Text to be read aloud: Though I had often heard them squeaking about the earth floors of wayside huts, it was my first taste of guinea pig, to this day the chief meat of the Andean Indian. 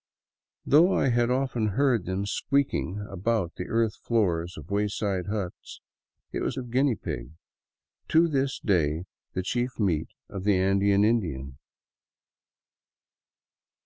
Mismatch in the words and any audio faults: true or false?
true